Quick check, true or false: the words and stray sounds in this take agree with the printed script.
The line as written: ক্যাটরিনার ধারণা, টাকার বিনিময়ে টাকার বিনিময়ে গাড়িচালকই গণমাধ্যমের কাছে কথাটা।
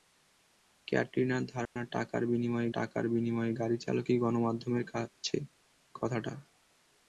false